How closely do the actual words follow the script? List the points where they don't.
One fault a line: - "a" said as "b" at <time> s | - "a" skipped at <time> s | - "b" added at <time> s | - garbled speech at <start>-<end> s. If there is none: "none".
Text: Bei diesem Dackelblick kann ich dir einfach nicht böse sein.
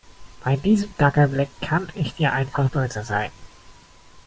- "nicht" skipped at 2.7 s